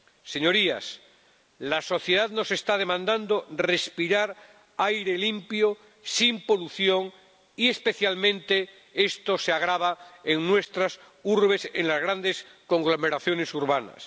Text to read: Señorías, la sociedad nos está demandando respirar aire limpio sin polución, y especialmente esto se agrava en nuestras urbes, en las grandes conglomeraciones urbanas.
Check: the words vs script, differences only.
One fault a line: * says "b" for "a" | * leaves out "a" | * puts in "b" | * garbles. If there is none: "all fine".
all fine